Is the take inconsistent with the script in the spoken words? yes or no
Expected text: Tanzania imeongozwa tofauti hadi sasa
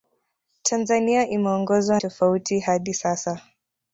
no